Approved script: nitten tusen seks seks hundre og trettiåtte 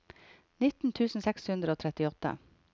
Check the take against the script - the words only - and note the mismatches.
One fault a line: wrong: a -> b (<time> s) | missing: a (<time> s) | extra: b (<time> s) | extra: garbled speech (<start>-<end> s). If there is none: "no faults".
missing: seks (1.5 s)